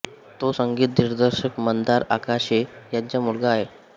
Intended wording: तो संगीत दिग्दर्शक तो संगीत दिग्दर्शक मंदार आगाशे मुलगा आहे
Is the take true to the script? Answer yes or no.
no